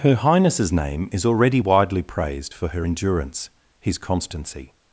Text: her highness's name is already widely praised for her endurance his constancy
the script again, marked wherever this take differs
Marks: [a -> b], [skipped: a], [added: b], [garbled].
her highness's name is already widely praised for her endurance his constancy